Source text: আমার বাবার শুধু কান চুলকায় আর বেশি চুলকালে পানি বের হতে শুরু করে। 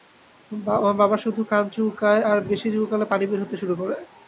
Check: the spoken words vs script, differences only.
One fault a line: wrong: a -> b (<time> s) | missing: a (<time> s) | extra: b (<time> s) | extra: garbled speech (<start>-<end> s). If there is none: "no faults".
no faults